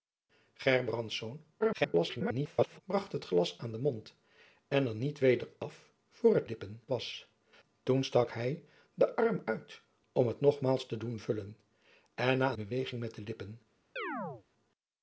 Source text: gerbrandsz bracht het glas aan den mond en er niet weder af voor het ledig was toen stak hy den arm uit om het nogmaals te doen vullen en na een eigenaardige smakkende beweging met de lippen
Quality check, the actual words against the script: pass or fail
fail